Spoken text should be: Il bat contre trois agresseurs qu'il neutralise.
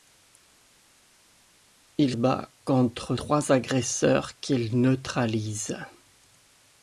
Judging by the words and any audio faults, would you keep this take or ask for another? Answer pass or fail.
pass